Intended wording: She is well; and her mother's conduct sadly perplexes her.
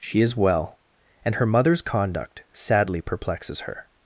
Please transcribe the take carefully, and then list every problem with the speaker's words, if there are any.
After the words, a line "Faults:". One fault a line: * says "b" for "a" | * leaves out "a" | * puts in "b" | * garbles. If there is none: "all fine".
She is well; and her mother's conduct sadly perplexes her.
Faults:
all fine